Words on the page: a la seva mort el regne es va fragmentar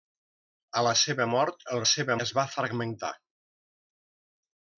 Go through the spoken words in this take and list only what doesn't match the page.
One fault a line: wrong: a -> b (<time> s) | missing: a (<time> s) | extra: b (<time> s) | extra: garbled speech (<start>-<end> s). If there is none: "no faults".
wrong: regne -> seva (1.9 s)